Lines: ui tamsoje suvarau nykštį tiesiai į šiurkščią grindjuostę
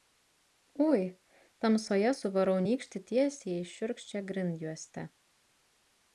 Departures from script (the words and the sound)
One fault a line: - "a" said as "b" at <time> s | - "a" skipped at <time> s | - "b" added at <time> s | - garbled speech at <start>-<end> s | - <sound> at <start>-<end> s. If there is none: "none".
none